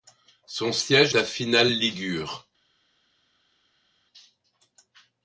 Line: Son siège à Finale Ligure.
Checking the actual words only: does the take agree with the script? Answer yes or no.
yes